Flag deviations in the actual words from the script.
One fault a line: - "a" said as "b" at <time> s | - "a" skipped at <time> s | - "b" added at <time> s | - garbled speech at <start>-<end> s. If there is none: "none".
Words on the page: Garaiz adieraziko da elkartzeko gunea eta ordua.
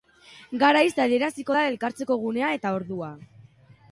none